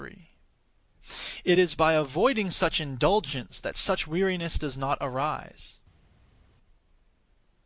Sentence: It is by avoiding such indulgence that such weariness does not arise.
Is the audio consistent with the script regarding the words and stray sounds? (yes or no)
yes